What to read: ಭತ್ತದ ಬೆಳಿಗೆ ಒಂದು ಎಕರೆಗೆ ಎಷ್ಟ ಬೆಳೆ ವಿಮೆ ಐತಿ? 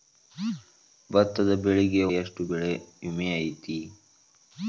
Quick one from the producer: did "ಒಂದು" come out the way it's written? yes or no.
no